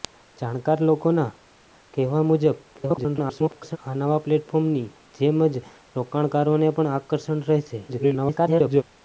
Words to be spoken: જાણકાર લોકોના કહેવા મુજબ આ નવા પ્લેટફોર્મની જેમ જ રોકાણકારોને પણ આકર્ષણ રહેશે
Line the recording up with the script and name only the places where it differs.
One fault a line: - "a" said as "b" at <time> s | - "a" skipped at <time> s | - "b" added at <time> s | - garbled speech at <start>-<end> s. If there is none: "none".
- garbled speech at 2.7-3.8 s
- garbled speech at 7.9-8.8 s